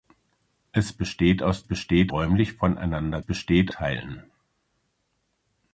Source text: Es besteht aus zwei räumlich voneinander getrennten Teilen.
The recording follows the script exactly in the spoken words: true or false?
false